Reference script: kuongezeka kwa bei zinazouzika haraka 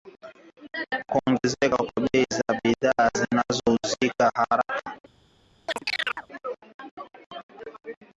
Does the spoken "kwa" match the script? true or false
true